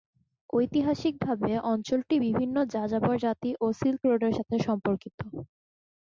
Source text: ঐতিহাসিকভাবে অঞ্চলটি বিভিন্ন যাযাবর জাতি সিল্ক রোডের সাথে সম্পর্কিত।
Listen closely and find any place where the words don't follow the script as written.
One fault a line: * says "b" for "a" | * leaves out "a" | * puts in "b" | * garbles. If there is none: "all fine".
* puts in "ও"